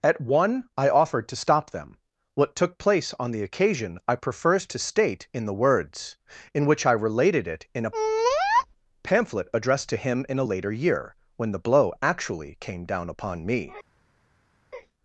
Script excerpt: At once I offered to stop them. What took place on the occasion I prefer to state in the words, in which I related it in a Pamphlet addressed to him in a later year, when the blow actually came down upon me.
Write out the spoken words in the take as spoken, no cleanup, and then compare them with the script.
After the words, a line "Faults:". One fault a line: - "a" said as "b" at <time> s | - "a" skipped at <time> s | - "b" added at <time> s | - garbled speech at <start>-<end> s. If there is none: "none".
At one I offered to stop them. What took place on the occasion I prefers to state in the words, in which I related it in a Pamphlet addressed to him in a later year, when the blow actually came down upon me.
Faults:
- "once" said as "one" at 0.2 s
- "prefer" said as "prefers" at 4.2 s